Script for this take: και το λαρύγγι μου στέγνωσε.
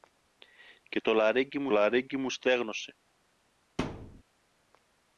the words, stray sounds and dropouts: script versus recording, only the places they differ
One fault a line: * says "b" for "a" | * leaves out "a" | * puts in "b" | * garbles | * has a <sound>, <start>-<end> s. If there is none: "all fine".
* puts in "λαρύγγι μου"
* has a thud, 3.8-4.2 s